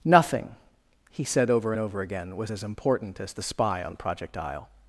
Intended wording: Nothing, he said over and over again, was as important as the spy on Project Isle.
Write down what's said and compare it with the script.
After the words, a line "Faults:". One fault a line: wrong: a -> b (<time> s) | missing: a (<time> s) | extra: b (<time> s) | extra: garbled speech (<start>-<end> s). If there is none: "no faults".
Nothing, he said over and over again, was as important as the spy on Project Isle.
Faults:
no faults